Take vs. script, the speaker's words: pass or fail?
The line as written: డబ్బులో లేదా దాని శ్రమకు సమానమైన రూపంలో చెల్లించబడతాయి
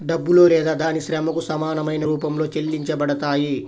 pass